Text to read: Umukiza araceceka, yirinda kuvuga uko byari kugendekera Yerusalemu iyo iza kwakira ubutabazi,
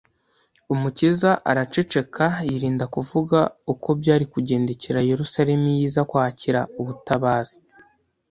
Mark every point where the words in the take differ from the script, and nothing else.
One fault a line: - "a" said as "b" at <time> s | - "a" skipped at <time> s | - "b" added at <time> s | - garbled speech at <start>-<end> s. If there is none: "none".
none